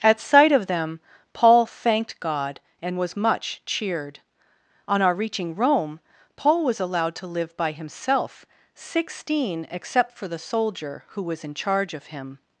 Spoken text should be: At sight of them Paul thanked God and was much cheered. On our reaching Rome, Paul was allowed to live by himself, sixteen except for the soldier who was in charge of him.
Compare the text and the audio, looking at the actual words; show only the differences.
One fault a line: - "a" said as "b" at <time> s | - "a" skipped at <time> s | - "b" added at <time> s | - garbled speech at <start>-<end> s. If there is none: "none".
none